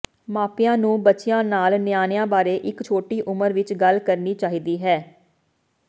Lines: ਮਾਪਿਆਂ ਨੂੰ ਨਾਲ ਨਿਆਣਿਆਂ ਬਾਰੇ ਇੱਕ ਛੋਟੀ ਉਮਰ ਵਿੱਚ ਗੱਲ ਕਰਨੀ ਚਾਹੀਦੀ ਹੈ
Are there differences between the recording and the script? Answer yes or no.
yes